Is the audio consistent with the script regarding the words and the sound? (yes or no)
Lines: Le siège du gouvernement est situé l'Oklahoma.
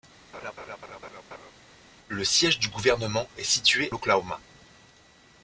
no